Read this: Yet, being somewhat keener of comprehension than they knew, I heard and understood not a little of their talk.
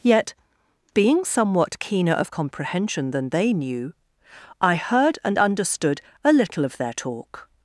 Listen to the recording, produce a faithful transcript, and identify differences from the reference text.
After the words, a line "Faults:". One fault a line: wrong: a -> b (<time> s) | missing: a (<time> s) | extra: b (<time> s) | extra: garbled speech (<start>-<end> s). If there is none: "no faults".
Yet, being somewhat keener of comprehension than they knew, I heard and understood a little of their talk.
Faults:
missing: not (6.0 s)